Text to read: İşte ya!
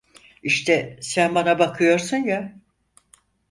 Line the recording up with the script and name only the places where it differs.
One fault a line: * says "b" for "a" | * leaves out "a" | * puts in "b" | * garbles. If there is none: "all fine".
* puts in "sen bana bakıyorsun"